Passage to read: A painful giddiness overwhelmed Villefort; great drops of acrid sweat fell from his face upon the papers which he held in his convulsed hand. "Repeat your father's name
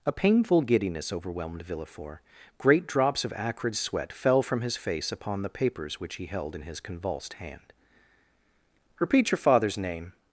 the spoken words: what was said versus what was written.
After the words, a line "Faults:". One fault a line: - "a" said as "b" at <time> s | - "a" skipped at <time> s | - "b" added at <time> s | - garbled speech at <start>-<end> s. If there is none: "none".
A painful giddiness overwhelmed Villefort; great drops of acrid sweat fell from his face upon the papers which he held in his convulsed hand. "Repeat your father's name
Faults:
none